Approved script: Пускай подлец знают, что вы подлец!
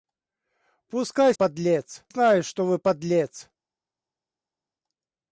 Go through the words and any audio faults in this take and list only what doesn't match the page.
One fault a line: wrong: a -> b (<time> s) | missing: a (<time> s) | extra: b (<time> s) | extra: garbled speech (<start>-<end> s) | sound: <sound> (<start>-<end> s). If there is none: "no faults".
no faults